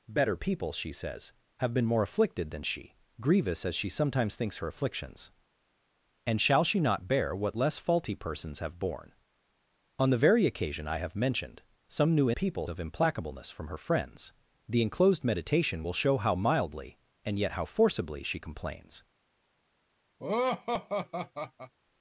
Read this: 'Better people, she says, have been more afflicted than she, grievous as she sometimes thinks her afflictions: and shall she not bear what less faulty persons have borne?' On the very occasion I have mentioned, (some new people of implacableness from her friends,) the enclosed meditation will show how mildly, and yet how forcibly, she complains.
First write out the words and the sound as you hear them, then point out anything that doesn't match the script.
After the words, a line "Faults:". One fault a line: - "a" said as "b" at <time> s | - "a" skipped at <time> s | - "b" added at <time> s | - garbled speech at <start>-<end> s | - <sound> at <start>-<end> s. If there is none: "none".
'Better people, she says, have been more afflicted than she, grievous as she sometimes thinks her afflictions: and shall she not bear what less faulty persons have borne?' On the very occasion I have mentioned, (some new people of implacableness from her friends,) the enclosed meditation will show how mildly, and yet how forcibly, she complains.
Faults:
- laugh at 20.2-21.7 s